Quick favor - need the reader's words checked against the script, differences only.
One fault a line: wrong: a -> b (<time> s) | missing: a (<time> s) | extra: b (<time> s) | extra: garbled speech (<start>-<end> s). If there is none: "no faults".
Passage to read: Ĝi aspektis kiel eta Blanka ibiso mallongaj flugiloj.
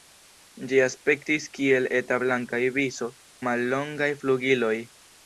no faults